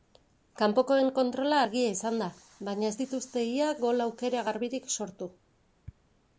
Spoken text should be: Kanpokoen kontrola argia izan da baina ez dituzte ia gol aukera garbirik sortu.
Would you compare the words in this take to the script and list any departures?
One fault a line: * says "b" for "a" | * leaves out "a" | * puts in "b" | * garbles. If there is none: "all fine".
all fine